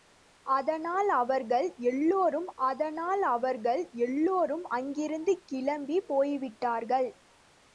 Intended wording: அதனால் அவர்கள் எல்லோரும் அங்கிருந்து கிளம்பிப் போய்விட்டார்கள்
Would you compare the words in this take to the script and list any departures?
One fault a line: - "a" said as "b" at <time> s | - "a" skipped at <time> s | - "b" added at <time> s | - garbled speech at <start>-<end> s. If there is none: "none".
- "அதனால் அவர்கள் எல்லோரும்" added at 2.6 s